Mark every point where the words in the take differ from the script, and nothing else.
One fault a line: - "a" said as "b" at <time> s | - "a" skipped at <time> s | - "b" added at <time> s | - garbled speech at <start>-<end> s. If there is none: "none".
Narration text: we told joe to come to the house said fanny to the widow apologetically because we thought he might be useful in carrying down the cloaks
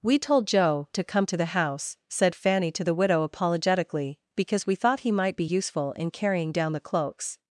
none